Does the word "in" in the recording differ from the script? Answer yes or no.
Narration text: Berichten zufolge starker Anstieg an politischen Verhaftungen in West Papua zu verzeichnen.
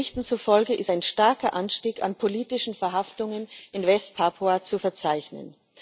no